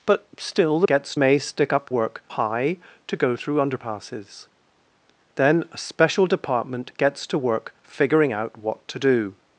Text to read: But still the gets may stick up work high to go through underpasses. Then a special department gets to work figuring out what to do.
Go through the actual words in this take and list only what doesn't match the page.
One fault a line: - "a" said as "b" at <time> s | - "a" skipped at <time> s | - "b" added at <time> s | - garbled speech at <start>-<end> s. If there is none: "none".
none